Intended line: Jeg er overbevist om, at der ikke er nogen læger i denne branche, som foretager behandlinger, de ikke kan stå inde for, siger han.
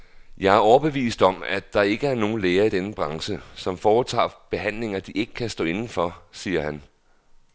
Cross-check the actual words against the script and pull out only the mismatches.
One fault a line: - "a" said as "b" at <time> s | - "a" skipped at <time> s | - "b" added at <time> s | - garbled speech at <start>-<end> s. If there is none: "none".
none